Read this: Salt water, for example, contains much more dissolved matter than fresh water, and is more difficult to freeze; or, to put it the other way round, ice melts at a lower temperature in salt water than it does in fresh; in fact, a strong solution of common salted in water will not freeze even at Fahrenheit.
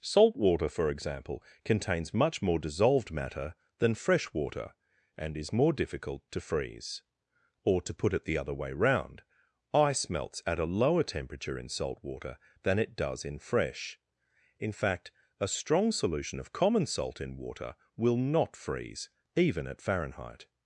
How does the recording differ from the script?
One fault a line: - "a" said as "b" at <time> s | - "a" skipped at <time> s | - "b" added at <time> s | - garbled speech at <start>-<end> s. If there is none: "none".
- "salted" said as "salt" at 16.9 s